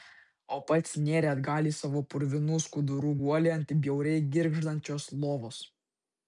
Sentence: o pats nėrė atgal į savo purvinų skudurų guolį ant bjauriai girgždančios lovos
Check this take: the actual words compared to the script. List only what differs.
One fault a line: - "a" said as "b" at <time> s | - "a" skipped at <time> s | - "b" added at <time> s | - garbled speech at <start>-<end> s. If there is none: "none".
none